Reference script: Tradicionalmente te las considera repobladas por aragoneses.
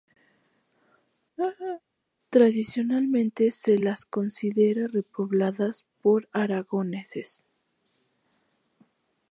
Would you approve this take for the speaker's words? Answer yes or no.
no